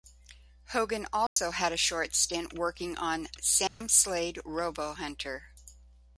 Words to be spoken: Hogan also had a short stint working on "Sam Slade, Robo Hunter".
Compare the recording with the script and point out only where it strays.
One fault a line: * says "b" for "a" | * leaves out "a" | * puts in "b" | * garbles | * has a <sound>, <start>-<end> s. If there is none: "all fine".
* has a dropout, 1.3-1.4 s
* has a dropout, 3.7-3.8 s